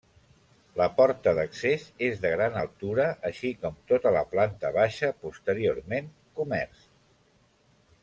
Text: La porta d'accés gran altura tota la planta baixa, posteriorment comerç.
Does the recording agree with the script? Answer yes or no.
no